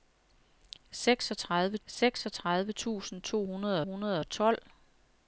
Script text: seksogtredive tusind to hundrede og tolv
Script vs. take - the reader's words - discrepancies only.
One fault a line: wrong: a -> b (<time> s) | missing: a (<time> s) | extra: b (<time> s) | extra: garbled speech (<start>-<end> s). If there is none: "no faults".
extra: seksogtredive (1.9 s)
extra: hundrede (3.8 s)